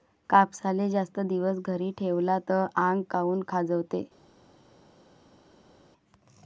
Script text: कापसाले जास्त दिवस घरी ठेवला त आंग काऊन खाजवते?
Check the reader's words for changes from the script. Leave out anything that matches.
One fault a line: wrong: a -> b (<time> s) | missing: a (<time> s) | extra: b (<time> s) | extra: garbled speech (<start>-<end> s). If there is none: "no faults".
no faults